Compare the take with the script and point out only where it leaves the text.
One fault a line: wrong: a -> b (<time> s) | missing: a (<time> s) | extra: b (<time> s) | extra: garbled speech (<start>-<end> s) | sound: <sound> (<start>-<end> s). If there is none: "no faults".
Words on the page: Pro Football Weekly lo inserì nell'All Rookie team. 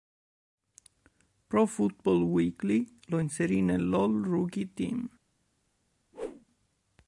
sound: whoosh (6.1-6.5 s)